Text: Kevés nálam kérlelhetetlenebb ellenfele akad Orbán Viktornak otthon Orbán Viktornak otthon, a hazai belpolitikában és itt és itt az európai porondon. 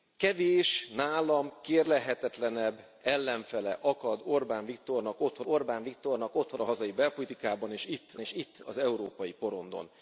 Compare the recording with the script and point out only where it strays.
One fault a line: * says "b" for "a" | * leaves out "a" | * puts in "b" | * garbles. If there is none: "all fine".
all fine